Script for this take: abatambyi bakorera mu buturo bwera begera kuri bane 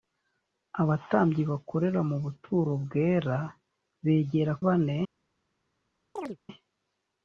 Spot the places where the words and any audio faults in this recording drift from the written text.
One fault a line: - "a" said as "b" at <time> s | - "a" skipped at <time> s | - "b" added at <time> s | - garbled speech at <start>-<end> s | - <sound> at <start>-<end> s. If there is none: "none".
- "kuri" skipped at 4.5 s
- chirp at 6.2-6.4 s